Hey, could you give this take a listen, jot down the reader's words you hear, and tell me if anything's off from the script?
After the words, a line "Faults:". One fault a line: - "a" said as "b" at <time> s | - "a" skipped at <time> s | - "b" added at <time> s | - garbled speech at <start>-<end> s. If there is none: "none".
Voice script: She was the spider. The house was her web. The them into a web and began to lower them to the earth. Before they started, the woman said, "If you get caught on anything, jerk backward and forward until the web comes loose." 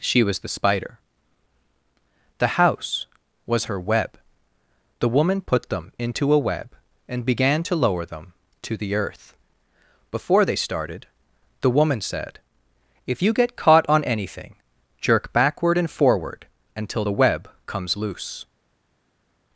She was the spider. The house was her web. The woman put them into a web and began to lower them to the earth. Before they started, the woman said, "If you get caught on anything, jerk backward and forward until the web comes loose."
Faults:
- "woman put" added at 5.1 s